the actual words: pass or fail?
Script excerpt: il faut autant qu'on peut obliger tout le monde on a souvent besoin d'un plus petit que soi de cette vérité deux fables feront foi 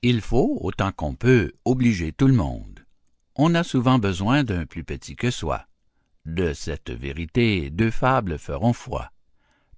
pass